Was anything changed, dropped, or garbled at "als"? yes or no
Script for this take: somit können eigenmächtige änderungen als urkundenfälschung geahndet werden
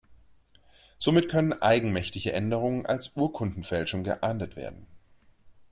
no